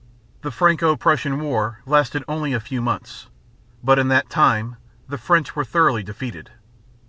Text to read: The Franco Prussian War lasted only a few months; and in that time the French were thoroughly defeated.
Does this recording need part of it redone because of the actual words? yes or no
yes